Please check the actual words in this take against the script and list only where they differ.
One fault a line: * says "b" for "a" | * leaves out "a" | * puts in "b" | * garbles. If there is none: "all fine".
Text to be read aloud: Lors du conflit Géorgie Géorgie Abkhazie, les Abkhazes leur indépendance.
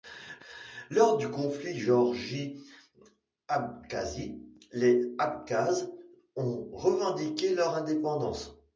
* leaves out "Géorgie"
* puts in "ont revendiqué"